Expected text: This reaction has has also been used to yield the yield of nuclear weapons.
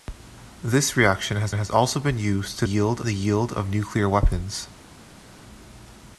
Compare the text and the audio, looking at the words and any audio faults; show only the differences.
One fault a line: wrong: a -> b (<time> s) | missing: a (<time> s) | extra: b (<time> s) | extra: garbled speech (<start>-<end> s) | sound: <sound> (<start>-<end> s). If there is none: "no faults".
no faults